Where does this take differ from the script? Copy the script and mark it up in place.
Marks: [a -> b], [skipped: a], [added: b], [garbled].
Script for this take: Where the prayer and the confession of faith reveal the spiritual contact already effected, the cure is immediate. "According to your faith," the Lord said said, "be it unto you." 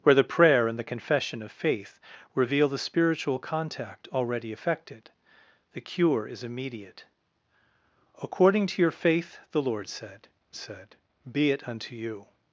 Where the prayer and the confession of faith reveal the spiritual contact already effected, the cure is immediate. "According to your faith," the Lord said said, "be it unto you."